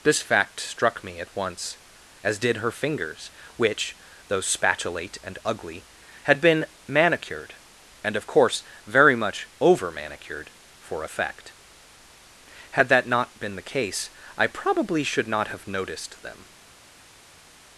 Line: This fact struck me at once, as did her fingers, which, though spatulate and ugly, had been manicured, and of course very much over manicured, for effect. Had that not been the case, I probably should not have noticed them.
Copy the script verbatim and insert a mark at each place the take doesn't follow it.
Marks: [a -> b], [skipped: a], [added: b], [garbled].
This fact struck me at once, as did her fingers, which, though spatulate and ugly, had been manicured, and of course very much over manicured, for effect. Had that not been the case, I probably should not have noticed them.